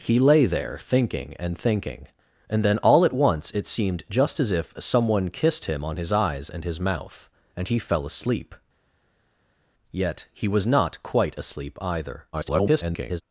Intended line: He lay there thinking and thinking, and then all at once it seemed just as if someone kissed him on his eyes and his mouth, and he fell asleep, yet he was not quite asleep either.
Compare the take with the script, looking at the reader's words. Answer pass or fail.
fail